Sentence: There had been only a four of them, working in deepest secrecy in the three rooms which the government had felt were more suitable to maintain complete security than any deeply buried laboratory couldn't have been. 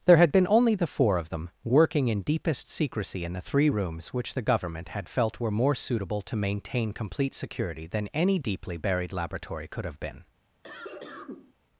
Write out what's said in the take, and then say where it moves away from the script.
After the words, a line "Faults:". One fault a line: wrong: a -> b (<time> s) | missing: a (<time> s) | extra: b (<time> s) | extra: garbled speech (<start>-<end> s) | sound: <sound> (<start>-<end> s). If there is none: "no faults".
There had been only the four of them, working in deepest secrecy in the three rooms which the government had felt were more suitable to maintain complete security than any deeply buried laboratory could have been.
Faults:
wrong: a -> the (0.7 s)
wrong: couldn't -> could (9.7 s)
sound: cough (10.6-11.5 s)